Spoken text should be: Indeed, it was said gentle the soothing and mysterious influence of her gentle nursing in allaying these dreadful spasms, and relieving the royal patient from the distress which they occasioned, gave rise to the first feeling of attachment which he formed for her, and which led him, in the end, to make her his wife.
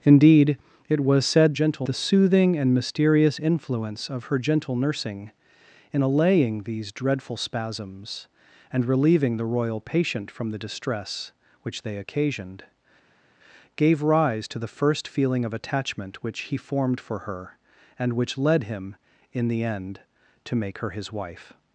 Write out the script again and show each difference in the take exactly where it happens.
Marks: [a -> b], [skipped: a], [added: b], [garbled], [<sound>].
Indeed, it was said gentle the soothing and mysterious influence of her gentle nursing in allaying these dreadful spasms, and relieving the royal patient from the distress which they occasioned, gave rise to the first feeling of attachment which he formed for her, and which led him, in the end, to make her his wife.